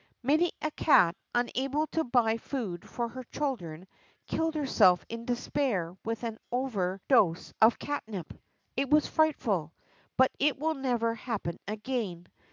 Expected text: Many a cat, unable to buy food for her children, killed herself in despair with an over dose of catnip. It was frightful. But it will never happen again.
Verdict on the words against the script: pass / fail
pass